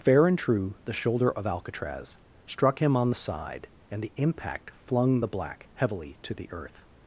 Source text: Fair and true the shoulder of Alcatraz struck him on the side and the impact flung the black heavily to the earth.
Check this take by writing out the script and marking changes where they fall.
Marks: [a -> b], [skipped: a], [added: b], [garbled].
Fair and true the shoulder of Alcatraz struck him on the side and the impact flung the black heavily to the earth.